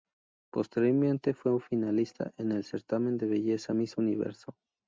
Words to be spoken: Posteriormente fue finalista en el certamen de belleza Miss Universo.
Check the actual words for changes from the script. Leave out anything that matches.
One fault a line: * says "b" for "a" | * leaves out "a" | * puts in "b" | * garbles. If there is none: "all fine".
all fine